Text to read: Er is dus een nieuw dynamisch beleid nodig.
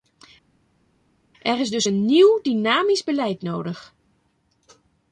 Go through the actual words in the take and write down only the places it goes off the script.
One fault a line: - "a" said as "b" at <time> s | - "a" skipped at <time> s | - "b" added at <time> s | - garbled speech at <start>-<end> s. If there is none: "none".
none